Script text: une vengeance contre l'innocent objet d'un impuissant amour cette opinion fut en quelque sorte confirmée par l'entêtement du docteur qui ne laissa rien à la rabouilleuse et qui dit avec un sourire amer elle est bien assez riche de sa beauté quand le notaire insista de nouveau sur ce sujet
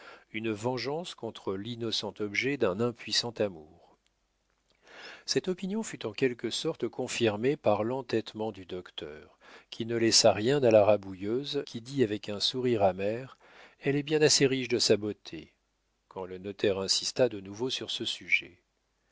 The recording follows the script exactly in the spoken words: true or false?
false